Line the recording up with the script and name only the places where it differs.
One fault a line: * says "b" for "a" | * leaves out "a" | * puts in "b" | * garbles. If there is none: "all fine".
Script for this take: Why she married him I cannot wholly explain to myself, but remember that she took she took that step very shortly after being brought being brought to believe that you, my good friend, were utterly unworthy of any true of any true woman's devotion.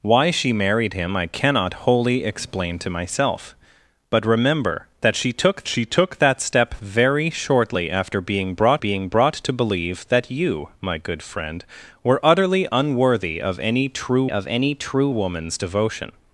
all fine